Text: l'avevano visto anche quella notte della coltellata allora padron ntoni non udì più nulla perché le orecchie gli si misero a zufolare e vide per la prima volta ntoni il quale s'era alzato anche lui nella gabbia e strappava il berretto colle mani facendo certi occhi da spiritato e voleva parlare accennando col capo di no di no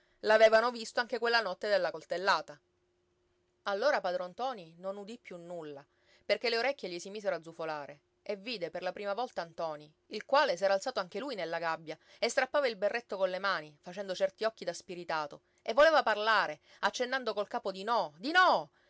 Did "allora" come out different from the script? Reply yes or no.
no